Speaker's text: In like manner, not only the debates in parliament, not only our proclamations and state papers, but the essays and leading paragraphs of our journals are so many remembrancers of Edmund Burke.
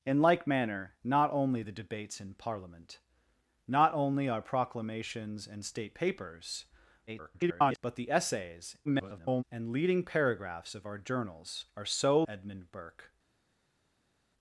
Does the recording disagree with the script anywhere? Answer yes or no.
yes